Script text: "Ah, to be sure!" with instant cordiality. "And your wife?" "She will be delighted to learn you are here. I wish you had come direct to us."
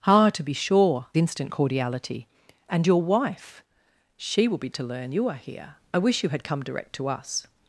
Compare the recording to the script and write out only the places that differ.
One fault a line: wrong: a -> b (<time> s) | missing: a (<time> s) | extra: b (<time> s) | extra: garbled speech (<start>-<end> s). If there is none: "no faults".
missing: with (1.1 s)
missing: delighted (4.7 s)